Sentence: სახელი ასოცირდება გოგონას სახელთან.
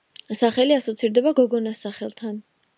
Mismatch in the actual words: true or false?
false